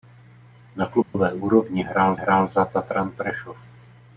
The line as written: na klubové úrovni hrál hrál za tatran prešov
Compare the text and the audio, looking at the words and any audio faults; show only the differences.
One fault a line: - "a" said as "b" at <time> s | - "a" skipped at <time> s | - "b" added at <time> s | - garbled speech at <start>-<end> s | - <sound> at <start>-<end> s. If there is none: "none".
- dropout at 1.0-1.1 s